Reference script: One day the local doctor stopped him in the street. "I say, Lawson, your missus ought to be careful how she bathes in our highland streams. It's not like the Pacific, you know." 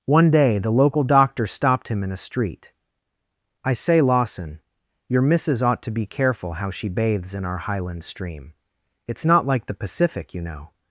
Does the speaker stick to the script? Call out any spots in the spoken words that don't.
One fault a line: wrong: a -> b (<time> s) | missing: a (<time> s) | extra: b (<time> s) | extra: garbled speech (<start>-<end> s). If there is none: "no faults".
wrong: the -> a (2.1 s)
wrong: streams -> stream (8.0 s)